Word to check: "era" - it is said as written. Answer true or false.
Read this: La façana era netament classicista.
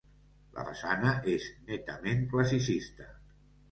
false